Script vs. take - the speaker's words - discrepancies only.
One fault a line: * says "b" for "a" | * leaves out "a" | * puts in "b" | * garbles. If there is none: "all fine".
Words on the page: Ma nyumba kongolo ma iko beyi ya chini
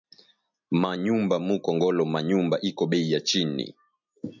* puts in "mu"
* puts in "nyumba"